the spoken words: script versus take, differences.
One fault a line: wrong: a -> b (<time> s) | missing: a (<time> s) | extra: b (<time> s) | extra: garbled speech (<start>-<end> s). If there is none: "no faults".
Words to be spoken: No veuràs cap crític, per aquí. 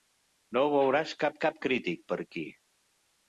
extra: cap (1.5 s)